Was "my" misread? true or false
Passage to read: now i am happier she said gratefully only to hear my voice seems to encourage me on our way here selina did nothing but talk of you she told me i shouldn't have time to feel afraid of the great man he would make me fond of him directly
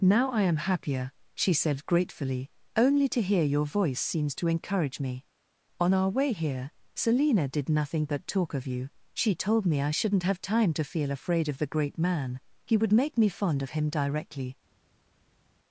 true